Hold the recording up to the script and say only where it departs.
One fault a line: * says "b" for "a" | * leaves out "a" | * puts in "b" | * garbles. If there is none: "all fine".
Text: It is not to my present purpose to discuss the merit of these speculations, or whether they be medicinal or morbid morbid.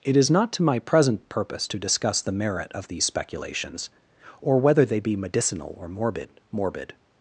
all fine